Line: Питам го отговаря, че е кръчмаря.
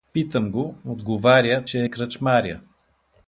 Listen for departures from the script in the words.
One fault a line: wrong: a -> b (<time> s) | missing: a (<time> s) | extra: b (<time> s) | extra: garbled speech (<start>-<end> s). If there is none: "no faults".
no faults